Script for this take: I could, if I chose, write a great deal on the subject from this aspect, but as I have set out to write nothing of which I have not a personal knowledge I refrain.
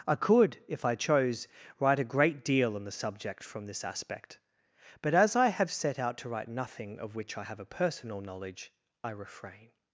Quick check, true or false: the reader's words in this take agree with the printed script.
false